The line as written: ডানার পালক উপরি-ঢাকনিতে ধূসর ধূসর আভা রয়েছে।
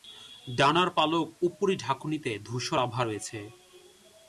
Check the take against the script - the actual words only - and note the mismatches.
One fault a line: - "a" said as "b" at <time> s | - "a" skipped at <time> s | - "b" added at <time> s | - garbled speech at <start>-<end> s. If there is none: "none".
- "ধূসর" skipped at 2.8 s